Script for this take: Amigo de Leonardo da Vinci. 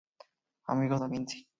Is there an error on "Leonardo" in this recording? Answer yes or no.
yes